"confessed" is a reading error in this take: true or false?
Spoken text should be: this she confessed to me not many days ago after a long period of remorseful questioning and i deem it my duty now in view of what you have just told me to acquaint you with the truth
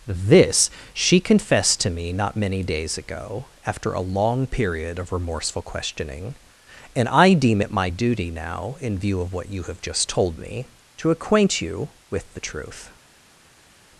false